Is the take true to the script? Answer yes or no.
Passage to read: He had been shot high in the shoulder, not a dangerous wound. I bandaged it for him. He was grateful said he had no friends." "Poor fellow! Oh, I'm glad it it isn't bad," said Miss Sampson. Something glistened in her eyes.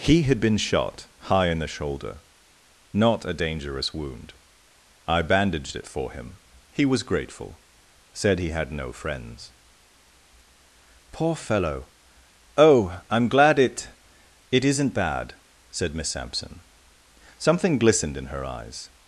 yes